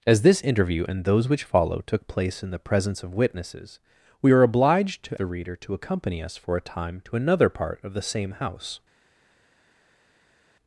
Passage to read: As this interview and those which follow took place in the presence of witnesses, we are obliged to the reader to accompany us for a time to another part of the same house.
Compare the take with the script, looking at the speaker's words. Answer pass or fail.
pass